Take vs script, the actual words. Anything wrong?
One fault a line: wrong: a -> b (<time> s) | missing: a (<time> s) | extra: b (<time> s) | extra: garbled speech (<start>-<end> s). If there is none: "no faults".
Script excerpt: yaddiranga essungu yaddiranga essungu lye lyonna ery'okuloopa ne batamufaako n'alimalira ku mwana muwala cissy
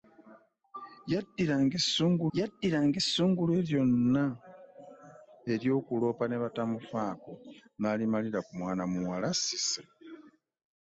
no faults